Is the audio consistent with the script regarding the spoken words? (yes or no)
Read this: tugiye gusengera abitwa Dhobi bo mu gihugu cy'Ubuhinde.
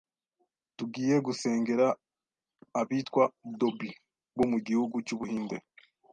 yes